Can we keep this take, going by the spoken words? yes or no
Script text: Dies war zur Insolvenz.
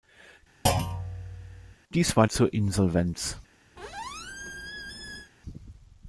yes